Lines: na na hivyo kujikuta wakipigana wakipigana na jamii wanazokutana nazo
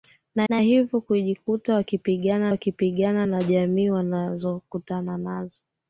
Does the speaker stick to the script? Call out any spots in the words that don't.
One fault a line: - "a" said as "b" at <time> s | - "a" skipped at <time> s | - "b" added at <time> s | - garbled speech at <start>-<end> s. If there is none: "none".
none